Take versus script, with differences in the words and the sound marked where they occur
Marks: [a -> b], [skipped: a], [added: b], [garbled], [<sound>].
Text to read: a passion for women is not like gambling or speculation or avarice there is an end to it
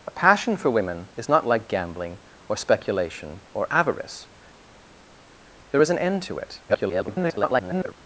a passion for women is not like gambling or speculation or avarice there is an end to it [garbled]